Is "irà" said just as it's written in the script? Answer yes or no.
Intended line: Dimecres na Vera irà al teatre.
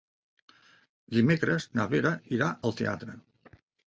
yes